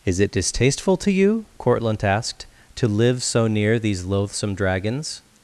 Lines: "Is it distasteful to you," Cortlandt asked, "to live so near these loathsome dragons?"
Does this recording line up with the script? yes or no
yes